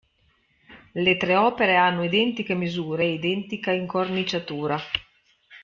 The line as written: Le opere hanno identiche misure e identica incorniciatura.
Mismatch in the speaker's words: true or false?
true